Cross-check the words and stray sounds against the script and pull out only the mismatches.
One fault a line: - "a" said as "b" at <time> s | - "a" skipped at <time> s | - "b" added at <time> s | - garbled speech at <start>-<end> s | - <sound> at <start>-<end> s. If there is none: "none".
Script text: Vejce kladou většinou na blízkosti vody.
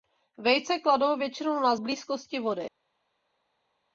none